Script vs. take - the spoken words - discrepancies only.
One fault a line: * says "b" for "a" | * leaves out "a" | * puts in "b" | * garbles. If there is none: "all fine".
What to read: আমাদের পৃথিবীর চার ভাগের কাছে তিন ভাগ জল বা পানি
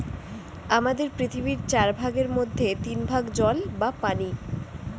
* says "মধ্যে" for "কাছে"